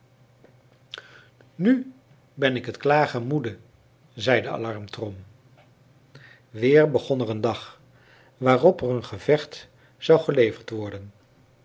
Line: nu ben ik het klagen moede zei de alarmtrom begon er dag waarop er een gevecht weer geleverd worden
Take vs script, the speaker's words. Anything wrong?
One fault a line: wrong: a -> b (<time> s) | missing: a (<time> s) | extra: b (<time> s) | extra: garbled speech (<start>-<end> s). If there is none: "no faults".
extra: weer (6.5 s)
extra: een (7.3 s)
wrong: weer -> zou (10.0 s)